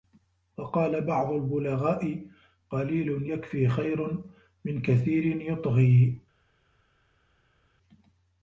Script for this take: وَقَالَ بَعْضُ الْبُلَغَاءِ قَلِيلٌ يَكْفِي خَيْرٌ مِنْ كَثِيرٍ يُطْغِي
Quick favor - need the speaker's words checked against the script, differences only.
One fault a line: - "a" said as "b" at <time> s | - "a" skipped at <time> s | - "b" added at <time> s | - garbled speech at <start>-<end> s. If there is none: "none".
none